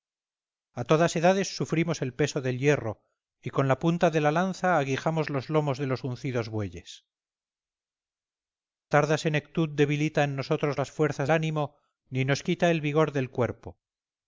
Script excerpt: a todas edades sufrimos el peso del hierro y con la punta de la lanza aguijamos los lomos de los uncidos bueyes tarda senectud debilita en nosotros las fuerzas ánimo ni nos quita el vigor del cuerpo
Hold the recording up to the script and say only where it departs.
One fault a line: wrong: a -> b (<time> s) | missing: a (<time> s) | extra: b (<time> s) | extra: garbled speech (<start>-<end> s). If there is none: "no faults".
no faults